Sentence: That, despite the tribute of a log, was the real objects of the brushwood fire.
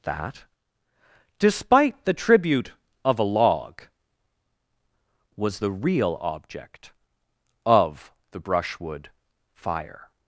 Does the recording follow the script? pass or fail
fail